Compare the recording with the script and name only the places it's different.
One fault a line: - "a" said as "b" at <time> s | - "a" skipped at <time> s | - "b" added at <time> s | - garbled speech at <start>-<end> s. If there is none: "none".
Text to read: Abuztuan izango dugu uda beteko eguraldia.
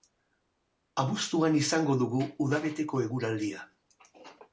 none